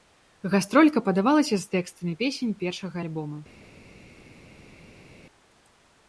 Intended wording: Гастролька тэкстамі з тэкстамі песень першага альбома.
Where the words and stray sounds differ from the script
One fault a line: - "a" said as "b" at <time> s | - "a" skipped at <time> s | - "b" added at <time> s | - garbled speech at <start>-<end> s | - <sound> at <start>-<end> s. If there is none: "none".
- "тэкстамі" said as "падавалася" at 1.1 s